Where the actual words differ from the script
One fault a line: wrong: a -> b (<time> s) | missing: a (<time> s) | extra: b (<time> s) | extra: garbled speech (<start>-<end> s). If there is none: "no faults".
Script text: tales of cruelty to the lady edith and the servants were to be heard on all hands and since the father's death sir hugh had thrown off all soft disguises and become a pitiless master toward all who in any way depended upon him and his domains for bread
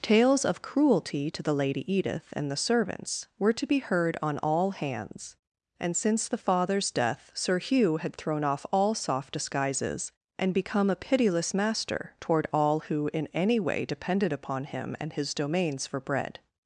no faults